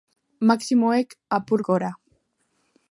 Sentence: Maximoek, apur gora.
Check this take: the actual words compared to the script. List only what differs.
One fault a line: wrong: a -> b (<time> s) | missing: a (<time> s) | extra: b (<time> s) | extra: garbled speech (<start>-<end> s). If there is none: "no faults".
no faults